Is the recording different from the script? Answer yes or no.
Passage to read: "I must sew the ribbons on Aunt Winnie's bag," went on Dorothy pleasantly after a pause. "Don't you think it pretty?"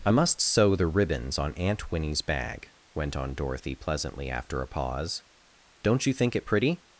no